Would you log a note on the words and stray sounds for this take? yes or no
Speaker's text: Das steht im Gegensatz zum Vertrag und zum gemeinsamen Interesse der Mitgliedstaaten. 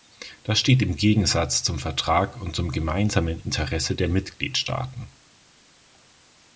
no